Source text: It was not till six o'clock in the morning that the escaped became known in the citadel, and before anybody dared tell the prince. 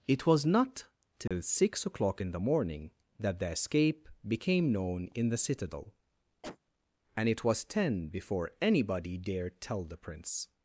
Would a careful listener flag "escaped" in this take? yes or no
yes